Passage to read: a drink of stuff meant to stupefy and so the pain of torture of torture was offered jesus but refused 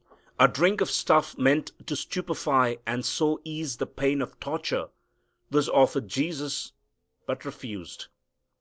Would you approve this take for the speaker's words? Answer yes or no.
no